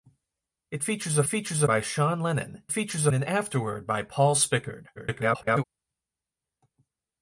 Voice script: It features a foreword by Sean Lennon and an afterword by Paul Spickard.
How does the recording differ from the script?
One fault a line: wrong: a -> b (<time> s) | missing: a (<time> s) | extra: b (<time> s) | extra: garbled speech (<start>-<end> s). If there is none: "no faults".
wrong: foreword -> features (1.3 s)
wrong: and -> features (2.7 s)
extra: garbled speech (5.0-5.6 s)